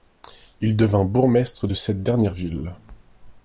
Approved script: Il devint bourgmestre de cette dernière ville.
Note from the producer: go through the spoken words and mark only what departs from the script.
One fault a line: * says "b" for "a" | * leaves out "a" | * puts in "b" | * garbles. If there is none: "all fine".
all fine